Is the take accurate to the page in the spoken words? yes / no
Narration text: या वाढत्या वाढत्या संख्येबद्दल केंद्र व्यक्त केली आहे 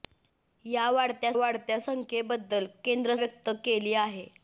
yes